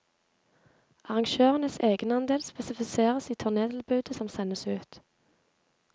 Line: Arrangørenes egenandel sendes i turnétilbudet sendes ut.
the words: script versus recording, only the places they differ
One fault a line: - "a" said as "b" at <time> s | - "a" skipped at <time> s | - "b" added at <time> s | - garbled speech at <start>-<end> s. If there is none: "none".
- "sendes" said as "spesifiseres" at 2.4 s
- "som" added at 4.1 s